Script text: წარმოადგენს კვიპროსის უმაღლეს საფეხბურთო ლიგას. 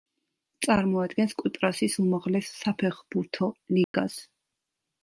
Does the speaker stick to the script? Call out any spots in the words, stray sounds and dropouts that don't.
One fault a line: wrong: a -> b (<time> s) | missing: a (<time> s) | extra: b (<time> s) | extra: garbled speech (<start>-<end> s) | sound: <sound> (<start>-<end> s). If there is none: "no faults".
sound: dropout (3.8-3.9 s)